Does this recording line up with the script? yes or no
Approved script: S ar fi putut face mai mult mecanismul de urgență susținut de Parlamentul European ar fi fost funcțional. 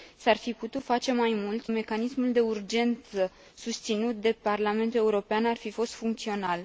yes